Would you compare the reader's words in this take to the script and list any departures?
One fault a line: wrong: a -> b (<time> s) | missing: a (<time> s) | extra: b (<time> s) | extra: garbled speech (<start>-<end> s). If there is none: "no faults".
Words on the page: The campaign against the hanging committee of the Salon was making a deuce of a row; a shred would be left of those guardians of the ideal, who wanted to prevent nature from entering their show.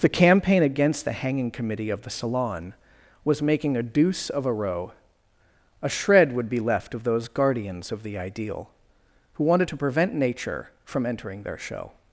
no faults